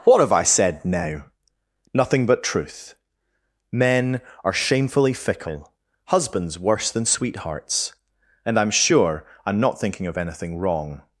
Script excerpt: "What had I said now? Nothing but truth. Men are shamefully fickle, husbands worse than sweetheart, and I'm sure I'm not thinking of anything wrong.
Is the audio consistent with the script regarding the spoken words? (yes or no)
no